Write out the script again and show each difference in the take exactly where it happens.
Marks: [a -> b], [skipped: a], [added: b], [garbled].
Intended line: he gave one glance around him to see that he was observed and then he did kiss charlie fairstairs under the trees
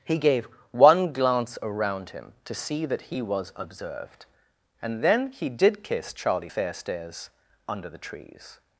he gave one glance around him to see that he was observed and then he did kiss charlie fairstairs under the trees